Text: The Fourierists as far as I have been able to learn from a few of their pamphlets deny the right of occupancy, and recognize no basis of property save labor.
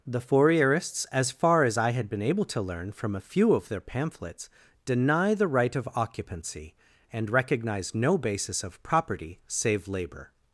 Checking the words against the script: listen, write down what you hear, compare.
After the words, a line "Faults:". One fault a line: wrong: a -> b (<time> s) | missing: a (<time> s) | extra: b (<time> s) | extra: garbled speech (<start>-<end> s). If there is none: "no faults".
The Fourierists as far as I had been able to learn from a few of their pamphlets deny the right of occupancy, and recognize no basis of property save labor.
Faults:
wrong: have -> had (1.9 s)